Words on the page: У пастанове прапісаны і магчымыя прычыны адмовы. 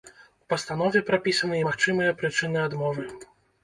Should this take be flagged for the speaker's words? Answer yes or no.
no